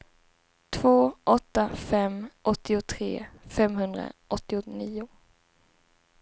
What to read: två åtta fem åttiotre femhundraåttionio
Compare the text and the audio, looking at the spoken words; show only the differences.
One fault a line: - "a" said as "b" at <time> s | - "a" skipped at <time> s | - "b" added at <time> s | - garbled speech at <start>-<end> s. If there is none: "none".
none